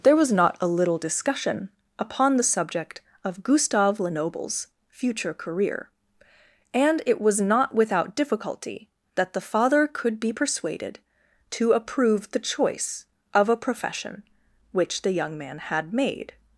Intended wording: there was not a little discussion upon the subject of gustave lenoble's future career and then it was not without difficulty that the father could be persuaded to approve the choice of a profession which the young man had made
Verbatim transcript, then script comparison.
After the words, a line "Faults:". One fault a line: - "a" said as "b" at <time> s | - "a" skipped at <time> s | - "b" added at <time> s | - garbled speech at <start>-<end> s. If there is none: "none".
there was not a little discussion upon the subject of gustave lenoble's future career and it was not without difficulty that the father could be persuaded to approve the choice of a profession which the young man had made
Faults:
- "then" skipped at 7.0 s